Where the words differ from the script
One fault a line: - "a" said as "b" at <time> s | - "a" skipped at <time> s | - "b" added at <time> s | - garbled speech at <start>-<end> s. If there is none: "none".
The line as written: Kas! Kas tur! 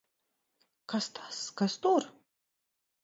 - "tas" added at 1.2 s